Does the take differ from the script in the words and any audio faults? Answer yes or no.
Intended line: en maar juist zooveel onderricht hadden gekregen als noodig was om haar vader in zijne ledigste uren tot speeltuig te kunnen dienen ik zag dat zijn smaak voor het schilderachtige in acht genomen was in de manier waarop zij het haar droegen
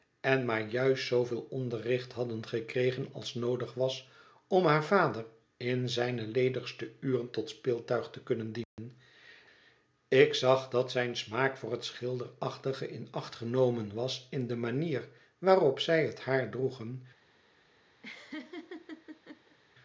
yes